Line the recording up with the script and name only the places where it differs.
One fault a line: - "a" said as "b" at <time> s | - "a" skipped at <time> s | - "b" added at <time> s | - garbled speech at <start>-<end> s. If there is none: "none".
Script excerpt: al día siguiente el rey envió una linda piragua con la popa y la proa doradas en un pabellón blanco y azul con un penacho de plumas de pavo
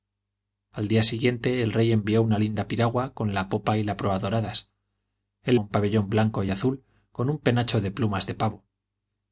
none